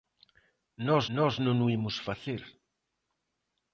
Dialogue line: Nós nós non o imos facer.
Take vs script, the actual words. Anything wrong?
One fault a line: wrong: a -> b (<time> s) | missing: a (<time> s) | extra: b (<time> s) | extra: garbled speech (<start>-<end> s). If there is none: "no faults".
no faults